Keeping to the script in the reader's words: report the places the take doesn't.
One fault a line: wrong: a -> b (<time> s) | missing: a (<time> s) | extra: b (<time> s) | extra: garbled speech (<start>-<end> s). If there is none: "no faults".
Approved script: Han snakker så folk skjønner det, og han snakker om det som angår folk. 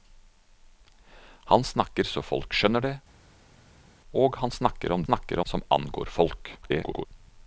wrong: det -> snakker (5.0 s)
extra: garbled speech (6.6-7.1 s)